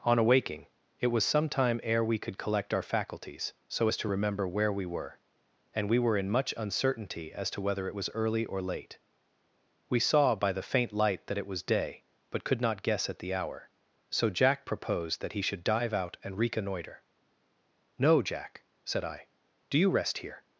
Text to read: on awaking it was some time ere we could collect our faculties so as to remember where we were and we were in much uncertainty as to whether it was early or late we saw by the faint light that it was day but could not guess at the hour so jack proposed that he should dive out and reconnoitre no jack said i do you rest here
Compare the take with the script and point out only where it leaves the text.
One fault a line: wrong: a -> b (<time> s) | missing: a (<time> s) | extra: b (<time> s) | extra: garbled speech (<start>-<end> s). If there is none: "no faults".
no faults